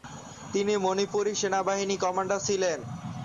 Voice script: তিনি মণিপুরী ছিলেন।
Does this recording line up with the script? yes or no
no